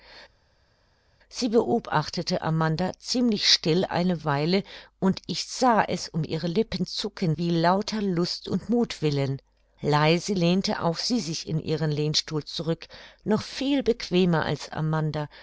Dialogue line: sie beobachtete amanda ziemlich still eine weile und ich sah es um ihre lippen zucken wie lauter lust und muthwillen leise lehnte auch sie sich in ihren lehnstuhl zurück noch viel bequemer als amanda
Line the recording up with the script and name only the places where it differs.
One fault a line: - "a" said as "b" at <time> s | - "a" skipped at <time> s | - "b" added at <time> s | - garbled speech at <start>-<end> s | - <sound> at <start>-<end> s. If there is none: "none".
none